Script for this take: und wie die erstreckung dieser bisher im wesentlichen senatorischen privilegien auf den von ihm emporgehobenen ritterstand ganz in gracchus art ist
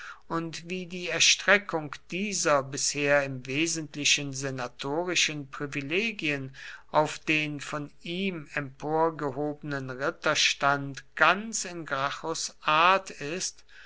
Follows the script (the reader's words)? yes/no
yes